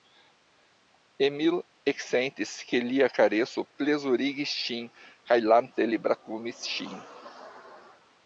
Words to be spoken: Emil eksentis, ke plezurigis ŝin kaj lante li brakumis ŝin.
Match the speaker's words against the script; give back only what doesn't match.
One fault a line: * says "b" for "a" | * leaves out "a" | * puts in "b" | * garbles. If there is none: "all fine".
* puts in "lia kareso"